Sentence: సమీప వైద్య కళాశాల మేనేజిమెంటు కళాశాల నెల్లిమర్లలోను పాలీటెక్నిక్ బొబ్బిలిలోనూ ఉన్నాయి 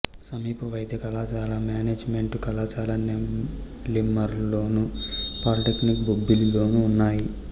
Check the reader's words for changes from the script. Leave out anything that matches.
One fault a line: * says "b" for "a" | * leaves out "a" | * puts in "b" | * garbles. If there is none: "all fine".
all fine